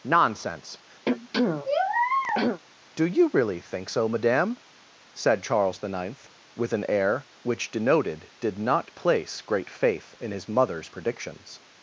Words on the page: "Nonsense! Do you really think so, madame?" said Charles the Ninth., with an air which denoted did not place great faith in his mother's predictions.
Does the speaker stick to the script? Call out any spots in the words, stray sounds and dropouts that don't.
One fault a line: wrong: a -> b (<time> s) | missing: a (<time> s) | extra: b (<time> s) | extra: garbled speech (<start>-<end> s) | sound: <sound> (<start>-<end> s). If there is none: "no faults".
sound: throat clearing (1.1-2.6 s)